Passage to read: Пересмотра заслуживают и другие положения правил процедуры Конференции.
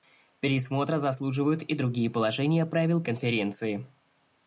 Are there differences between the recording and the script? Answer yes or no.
yes